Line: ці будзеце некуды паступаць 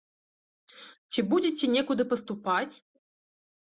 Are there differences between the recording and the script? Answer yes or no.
no